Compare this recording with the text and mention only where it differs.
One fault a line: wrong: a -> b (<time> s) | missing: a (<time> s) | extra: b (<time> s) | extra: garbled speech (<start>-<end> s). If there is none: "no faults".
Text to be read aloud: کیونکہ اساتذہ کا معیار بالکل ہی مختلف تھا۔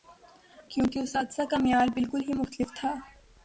no faults